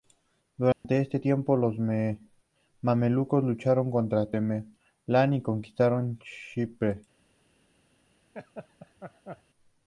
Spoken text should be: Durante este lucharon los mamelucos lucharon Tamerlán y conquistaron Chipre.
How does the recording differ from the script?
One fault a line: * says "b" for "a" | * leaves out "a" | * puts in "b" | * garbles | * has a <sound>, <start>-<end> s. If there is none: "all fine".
* has a dropout, 0.7-0.8 s
* says "tiempo" for "lucharon"
* puts in "contra"
* has a laugh, 8.3-9.4 s